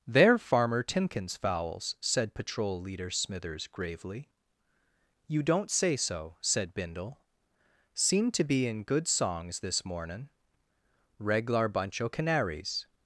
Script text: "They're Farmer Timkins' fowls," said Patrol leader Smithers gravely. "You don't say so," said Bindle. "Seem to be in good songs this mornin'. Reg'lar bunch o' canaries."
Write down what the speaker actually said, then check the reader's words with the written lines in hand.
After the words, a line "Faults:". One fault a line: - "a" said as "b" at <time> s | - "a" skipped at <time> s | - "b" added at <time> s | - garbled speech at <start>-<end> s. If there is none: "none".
"They're Farmer Timkins' fowls," said Patrol leader Smithers gravely. "You don't say so," said Bindle. "Seem to be in good songs this mornin'. Reg'lar bunch o' canaries."
Faults:
none